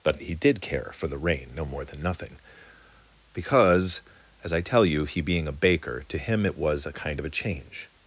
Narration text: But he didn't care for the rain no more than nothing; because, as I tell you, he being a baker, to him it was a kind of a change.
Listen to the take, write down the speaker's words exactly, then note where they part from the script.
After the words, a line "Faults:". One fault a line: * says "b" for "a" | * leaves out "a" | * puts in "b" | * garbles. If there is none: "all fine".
But he did care for the rain no more than nothing; because, as I tell you, he being a baker, to him it was a kind of a change.
Faults:
* says "did" for "didn't"